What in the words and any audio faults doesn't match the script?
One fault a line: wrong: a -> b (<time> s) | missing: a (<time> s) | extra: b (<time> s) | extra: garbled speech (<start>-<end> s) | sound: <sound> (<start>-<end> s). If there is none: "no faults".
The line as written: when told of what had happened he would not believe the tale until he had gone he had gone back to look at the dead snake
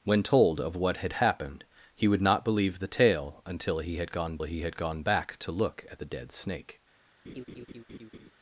sound: laugh (7.2-8.3 s)